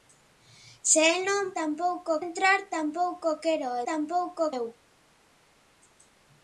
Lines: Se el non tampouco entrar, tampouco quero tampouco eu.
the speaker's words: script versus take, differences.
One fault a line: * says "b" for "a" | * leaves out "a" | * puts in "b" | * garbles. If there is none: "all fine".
all fine